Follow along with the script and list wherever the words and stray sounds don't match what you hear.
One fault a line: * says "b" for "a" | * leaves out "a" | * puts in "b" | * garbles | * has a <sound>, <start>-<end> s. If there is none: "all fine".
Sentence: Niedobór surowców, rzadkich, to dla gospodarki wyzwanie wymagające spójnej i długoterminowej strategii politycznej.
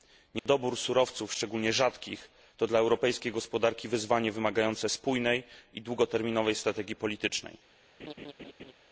* has a dropout, 0.4-0.5 s
* puts in "szczególnie"
* puts in "europejskiej"
* has a laugh, 8.0-8.7 s